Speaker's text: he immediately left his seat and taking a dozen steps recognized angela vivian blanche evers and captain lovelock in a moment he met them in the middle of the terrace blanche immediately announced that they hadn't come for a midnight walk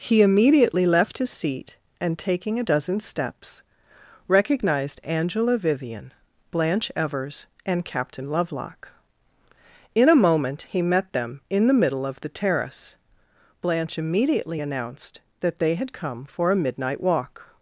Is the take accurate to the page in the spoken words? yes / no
no